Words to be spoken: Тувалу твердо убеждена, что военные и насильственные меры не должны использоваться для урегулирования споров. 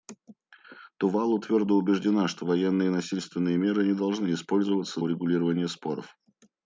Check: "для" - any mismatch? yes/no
yes